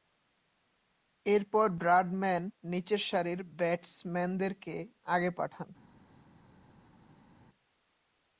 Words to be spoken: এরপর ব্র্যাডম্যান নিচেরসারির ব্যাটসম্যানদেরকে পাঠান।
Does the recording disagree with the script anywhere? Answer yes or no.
yes